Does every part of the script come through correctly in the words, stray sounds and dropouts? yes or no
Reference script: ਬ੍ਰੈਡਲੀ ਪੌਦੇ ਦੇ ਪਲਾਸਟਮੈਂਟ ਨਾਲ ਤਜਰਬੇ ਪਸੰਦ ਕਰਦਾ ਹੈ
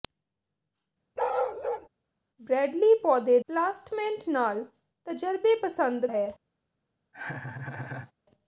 no